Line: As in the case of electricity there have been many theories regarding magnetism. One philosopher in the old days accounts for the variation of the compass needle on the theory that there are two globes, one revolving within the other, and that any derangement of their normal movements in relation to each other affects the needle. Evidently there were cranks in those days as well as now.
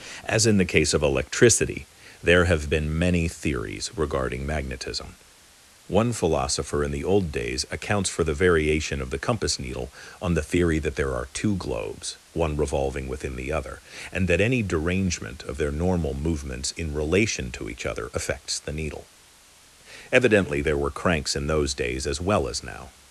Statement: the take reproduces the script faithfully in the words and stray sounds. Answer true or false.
true